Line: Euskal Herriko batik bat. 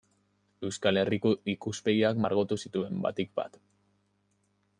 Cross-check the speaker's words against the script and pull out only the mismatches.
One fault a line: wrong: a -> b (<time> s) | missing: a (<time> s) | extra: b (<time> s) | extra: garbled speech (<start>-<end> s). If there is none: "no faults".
extra: ikuspegiak margotu zituen (1.5 s)